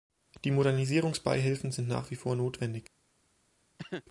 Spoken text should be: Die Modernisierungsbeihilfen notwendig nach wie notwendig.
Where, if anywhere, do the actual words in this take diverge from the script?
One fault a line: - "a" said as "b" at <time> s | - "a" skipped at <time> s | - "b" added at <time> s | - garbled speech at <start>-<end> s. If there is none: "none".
- "notwendig" said as "sind" at 1.7 s
- "vor" added at 2.1 s